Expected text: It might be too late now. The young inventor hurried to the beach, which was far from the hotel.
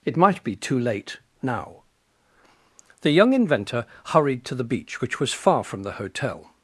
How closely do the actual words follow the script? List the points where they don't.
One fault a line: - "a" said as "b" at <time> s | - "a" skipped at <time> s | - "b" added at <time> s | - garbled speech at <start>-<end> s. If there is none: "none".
none